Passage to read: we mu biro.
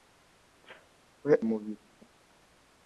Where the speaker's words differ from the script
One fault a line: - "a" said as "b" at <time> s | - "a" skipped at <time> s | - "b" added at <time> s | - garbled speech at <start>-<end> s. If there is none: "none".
none